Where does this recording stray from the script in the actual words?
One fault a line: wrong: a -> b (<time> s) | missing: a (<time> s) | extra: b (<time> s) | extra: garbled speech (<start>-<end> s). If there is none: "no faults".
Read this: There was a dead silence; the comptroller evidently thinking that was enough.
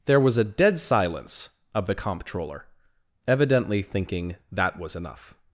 extra: of (1.7 s)